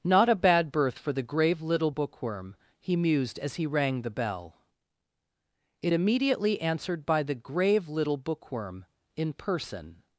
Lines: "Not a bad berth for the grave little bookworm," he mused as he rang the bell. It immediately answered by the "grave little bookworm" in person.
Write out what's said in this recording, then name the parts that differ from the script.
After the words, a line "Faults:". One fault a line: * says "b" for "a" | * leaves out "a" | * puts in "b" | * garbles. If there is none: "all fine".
"Not a bad berth for the grave little bookworm," he mused as he rang the bell. It immediately answered by the "grave little bookworm" in person.
Faults:
all fine